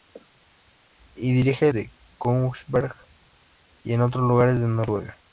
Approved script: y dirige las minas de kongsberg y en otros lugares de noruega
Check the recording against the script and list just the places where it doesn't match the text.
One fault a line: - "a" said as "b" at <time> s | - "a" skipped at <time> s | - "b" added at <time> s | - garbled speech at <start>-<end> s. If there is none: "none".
- "las minas" skipped at 1.7 s